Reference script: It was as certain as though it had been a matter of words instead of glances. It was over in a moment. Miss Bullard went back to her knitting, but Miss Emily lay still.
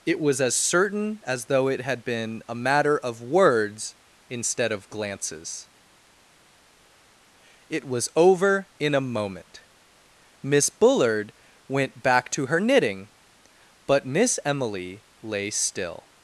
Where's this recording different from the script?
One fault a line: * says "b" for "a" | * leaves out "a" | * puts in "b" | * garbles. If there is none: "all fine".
all fine